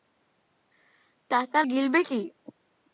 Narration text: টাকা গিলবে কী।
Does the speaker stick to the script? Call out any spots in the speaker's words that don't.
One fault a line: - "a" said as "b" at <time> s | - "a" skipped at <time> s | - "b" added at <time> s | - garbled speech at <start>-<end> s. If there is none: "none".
none